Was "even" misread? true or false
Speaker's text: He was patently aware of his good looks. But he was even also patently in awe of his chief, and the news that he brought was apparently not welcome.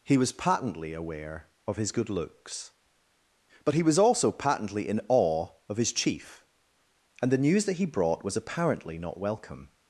true